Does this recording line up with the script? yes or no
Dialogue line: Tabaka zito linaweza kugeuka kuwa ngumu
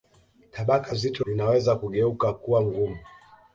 yes